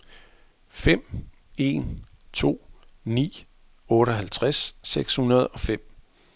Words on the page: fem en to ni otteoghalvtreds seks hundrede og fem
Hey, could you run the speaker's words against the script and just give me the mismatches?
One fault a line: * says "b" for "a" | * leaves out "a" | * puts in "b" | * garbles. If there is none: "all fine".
all fine